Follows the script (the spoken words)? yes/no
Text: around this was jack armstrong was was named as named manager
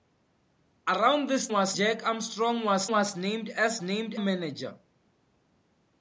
yes